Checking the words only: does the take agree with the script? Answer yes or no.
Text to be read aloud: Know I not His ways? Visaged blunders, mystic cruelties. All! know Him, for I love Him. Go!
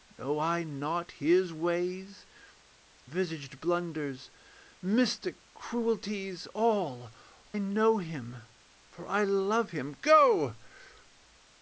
yes